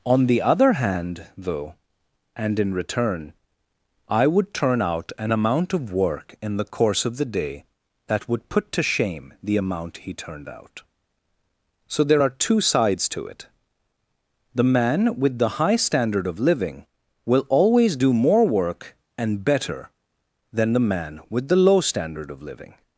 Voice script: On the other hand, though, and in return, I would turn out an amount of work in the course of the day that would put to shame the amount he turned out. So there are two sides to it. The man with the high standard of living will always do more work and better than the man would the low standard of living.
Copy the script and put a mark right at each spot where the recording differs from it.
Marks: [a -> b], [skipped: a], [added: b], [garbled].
On the other hand, though, and in return, I would turn out an amount of work in the course of the day that would put to shame the amount he turned out. So there are two sides to it. The man with the high standard of living will always do more work and better than the man [would -> with] the low standard of living.